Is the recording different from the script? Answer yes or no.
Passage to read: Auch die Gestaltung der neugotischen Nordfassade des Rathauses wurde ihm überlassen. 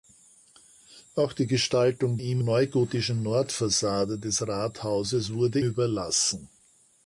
yes